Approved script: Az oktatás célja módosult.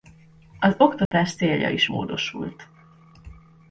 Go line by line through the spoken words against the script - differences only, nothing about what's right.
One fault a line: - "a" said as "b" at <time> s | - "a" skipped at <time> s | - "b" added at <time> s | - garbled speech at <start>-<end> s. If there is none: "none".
- "is" added at 1.7 s